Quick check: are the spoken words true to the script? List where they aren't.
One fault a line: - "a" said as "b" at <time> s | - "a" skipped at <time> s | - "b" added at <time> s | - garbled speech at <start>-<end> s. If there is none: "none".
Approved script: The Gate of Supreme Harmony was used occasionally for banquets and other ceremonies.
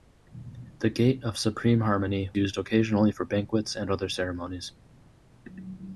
- "was" skipped at 2.3 s